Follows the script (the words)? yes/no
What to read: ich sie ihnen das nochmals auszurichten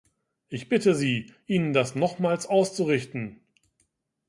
no